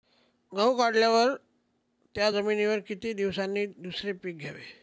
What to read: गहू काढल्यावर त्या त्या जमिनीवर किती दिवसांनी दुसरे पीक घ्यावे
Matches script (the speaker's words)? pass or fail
fail